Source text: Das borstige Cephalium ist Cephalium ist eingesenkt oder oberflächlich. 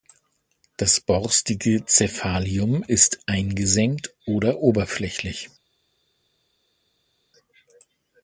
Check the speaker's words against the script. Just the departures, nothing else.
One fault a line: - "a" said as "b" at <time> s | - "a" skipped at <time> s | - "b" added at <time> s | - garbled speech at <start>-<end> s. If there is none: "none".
- "Cephalium ist" skipped at 3.2 s